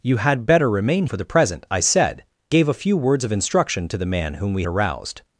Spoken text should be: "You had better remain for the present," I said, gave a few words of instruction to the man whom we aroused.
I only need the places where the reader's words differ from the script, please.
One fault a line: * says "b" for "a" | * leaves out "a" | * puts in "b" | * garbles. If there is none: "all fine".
all fine